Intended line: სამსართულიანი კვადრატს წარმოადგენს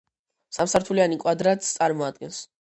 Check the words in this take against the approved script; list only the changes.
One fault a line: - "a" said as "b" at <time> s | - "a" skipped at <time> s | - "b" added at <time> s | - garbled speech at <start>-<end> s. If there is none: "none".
none